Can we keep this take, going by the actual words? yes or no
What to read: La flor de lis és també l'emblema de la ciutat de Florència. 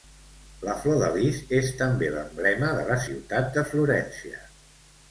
yes